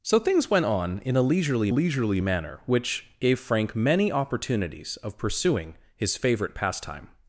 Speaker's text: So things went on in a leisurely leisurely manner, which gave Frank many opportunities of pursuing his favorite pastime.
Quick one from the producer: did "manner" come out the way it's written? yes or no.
yes